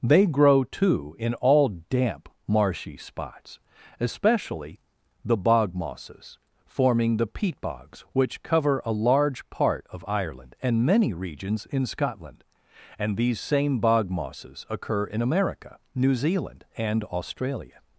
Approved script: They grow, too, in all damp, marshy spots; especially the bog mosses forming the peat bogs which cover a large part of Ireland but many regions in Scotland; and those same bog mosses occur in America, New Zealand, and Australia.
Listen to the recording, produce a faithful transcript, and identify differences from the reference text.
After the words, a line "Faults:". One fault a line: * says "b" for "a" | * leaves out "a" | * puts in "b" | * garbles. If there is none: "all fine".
They grow, too, in all damp, marshy spots; especially the bog mosses forming the peat bogs which cover a large part of Ireland and many regions in Scotland; and these same bog mosses occur in America, New Zealand, and Australia.
Faults:
* says "and" for "but"
* says "these" for "those"